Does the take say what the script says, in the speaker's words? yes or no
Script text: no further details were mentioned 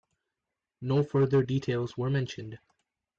yes